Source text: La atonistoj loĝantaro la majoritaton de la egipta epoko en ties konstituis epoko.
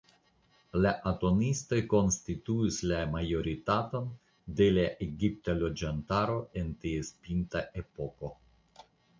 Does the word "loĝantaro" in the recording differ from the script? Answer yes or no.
yes